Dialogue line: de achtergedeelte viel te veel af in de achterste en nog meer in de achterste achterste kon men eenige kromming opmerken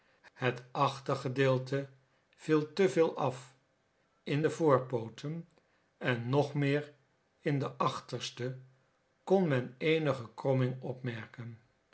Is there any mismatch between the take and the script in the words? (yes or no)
yes